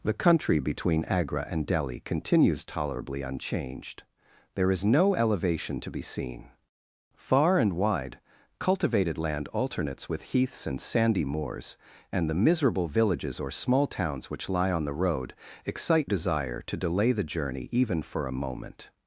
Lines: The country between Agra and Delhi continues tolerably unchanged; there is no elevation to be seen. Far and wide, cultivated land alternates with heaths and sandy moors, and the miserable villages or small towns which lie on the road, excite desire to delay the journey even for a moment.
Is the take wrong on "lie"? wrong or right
right